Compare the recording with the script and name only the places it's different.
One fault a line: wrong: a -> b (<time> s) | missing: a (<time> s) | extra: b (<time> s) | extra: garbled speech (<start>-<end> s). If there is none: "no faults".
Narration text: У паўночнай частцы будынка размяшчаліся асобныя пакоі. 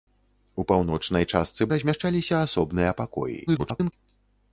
missing: будынка (1.7 s)
extra: garbled speech (3.5-3.9 s)